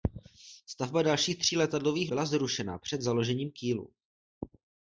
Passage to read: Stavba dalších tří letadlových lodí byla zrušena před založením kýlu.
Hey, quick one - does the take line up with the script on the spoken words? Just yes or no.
no